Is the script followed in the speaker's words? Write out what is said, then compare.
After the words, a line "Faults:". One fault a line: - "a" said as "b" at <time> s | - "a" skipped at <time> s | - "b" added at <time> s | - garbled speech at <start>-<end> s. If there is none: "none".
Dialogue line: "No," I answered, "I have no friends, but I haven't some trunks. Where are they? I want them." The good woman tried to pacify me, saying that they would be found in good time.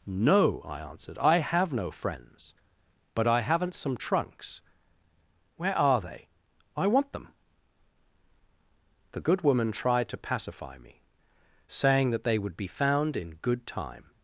"No," I answered, "I have no friends, but I haven't some trunks. Where are they? I want them." The good woman tried to pacify me, saying that they would be found in good time.
Faults:
none